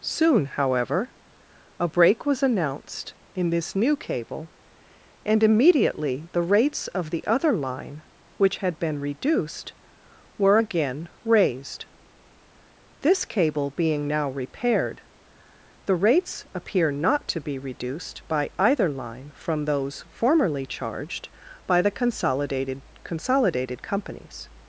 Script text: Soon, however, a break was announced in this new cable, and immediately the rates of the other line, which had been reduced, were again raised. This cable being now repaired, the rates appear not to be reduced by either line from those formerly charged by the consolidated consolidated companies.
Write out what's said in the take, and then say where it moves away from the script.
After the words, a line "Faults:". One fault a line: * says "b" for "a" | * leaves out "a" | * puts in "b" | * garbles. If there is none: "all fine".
Soon, however, a break was announced in this new cable, and immediately the rates of the other line, which had been reduced, were again raised. This cable being now repaired, the rates appear not to be reduced by either line from those formerly charged by the consolidated consolidated companies.
Faults:
all fine